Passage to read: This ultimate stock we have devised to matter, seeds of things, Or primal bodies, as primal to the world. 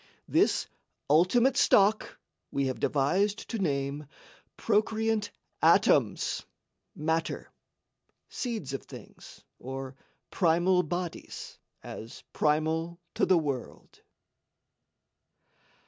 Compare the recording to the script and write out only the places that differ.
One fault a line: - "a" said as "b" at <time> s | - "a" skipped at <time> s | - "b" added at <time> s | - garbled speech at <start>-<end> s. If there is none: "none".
- "name Procreant atoms" added at 3.6 s